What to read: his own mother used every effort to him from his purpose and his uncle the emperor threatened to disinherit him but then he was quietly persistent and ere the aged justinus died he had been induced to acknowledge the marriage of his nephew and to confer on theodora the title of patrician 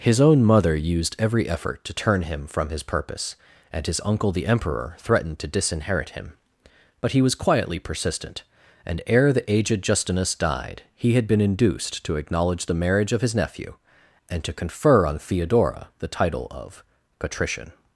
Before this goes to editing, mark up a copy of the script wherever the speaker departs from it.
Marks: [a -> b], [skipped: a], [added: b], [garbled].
his own mother used every effort to [added: turn] him from his purpose and his uncle the emperor threatened to disinherit him but [skipped: then] he was quietly persistent and ere the aged justinus died he had been induced to acknowledge the marriage of his nephew and to confer on theodora the title of patrician